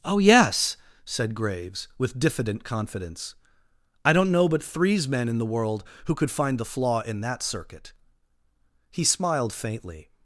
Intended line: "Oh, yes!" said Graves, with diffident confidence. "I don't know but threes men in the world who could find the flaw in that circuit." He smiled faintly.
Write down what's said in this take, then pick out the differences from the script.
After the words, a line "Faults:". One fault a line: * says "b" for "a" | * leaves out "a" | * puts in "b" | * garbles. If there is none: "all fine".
"Oh, yes!" said Graves, with diffident confidence. "I don't know but threes men in the world who could find the flaw in that circuit." He smiled faintly.
Faults:
all fine